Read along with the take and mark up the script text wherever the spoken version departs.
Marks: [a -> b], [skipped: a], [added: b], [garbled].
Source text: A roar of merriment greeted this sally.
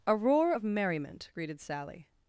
A roar of merriment greeted [skipped: this] sally.